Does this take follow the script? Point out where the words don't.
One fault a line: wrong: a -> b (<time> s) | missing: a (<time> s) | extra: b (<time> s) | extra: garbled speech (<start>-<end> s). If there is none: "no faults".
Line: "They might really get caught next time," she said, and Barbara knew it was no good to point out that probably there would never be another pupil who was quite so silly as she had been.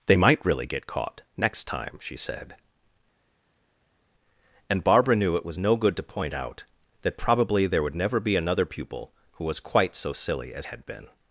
missing: she (10.7 s)